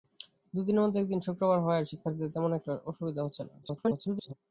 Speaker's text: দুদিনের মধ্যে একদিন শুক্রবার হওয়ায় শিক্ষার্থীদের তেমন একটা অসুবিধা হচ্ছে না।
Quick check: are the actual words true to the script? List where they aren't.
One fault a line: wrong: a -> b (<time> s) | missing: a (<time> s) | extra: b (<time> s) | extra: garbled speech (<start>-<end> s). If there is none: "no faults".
extra: garbled speech (3.6-4.3 s)